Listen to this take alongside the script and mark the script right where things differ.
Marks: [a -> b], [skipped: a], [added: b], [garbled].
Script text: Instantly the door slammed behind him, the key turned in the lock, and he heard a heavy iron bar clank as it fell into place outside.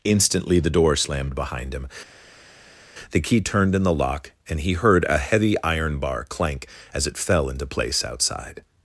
Instantly the door slammed behind him, the key turned in the lock, and he heard a heavy iron bar clank as it fell into place outside.